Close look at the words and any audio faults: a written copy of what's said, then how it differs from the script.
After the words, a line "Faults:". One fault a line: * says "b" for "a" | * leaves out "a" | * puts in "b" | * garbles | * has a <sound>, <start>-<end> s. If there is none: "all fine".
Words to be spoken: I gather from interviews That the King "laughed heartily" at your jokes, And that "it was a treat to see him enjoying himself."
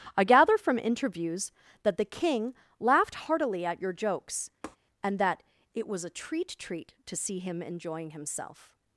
I gather from interviews That the King "laughed heartily" at your jokes, And that "it was a treat treat to see him enjoying himself."
Faults:
* has a tap, 4.6-4.8 s
* puts in "treat"